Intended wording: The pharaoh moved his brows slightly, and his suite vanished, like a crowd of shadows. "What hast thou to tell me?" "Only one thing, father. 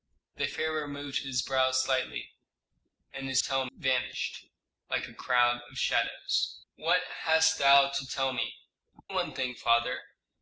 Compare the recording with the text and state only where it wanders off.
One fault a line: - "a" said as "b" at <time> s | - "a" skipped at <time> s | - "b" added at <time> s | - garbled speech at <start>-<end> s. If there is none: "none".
- "suite" said as "tell" at 3.4 s
- "Only" skipped at 8.5 s